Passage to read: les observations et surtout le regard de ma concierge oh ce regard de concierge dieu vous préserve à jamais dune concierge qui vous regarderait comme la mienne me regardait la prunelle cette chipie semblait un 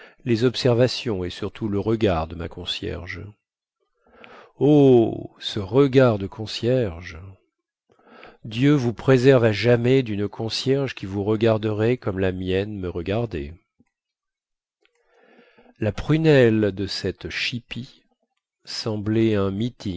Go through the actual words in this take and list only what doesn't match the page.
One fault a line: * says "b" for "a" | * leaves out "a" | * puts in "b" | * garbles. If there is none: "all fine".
* puts in "de"